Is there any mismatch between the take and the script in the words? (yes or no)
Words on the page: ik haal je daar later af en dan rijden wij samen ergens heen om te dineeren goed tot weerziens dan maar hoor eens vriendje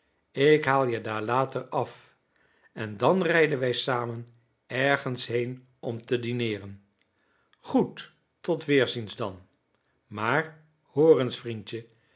no